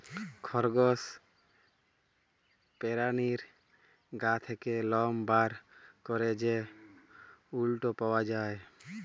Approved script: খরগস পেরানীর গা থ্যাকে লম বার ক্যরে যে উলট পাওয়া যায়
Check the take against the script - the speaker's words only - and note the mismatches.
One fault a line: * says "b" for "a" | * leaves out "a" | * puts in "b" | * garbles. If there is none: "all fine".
all fine